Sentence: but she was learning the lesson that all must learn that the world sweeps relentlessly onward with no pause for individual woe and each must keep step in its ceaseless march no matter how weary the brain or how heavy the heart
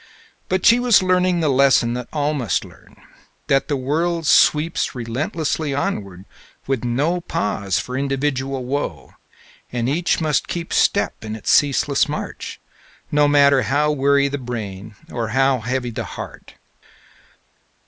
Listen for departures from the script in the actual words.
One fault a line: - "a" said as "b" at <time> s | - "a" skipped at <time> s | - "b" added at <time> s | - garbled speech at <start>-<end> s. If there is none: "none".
none